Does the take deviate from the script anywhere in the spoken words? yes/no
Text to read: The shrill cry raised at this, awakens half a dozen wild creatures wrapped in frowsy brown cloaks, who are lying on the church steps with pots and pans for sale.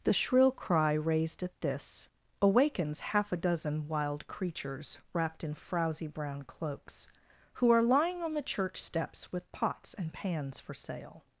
no